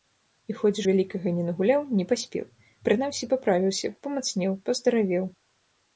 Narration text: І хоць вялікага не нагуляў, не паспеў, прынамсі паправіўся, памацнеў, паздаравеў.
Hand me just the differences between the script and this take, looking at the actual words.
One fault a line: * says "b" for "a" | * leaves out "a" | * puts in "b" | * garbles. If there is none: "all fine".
all fine